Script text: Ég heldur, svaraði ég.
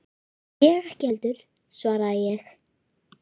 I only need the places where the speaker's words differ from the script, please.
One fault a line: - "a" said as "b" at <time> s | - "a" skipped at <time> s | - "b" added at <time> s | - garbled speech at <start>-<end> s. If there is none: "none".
- "ekki" added at 0.9 s